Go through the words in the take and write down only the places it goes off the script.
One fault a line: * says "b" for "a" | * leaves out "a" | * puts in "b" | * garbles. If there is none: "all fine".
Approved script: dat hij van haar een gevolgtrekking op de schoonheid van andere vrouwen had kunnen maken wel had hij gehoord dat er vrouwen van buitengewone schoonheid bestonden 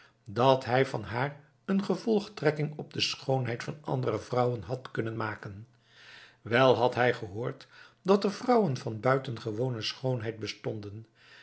all fine